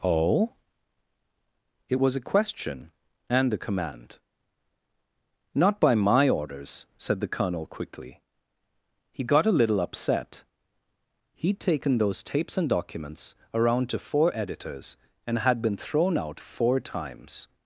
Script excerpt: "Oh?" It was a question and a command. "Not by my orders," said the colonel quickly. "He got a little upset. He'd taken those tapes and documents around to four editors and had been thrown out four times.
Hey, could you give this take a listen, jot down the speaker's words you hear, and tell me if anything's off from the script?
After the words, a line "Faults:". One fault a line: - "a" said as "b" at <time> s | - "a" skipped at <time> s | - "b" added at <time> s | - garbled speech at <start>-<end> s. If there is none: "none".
"Oh?" It was a question and a command. "Not by my orders," said the colonel quickly. "He got a little upset. He'd taken those tapes and documents around to four editors and had been thrown out four times.
Faults:
none